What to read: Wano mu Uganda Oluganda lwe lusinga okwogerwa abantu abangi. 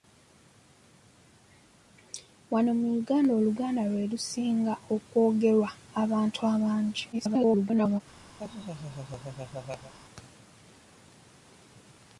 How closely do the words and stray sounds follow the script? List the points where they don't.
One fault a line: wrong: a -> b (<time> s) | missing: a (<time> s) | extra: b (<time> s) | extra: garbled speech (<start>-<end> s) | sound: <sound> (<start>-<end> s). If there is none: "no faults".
extra: garbled speech (7.1-8.0 s)
sound: laugh (8.4-9.9 s)